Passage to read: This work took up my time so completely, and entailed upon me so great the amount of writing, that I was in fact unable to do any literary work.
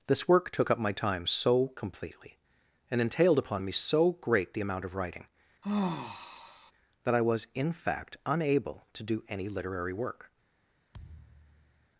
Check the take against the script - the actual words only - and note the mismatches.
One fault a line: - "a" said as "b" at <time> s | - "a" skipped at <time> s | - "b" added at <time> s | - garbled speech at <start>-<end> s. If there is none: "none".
none